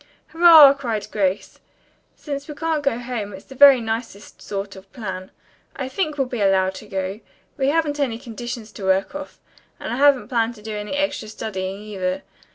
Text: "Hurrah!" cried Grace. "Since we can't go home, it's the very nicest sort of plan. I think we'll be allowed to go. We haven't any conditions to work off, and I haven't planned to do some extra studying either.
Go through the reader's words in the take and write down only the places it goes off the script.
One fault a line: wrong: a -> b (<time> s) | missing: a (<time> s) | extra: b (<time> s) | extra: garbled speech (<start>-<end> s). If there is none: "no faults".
wrong: some -> any (10.8 s)